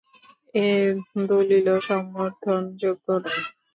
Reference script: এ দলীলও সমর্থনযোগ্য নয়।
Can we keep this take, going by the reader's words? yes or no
yes